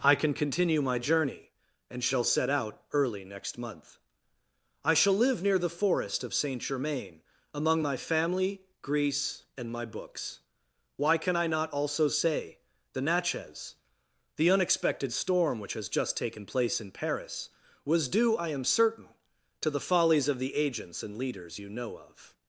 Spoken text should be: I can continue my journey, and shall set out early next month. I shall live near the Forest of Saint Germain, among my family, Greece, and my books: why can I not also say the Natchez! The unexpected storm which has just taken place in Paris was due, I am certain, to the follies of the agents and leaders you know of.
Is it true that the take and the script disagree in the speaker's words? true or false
false